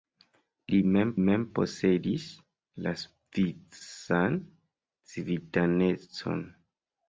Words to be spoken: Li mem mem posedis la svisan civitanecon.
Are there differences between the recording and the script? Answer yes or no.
no